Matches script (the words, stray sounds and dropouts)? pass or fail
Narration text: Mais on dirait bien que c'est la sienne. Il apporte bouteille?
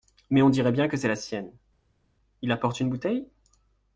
fail